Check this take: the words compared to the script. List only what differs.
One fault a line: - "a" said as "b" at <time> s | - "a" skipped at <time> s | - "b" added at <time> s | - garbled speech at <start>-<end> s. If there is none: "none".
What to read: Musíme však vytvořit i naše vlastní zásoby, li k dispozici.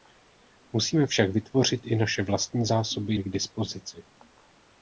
none